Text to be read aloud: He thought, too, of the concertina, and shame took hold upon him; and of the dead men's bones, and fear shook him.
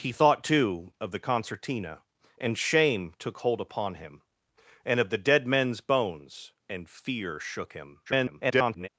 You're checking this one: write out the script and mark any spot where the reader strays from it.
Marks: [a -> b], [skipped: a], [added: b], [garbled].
He thought, too, of the concertina, and shame took hold upon him; and of the dead men's bones, and fear shook him. [garbled]